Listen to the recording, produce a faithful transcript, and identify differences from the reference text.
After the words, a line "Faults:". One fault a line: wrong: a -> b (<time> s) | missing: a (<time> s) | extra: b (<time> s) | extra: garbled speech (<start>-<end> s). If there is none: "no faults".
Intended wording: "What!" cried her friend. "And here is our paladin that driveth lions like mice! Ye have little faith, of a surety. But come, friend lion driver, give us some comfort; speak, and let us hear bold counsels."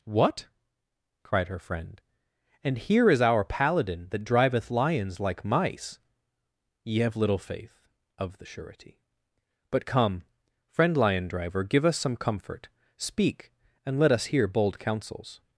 "What!" cried her friend. "And here is our paladin that driveth lions like mice! Ye have little faith, of the surety. But come, friend lion driver, give us some comfort; speak, and let us hear bold counsels."
Faults:
wrong: a -> the (8.4 s)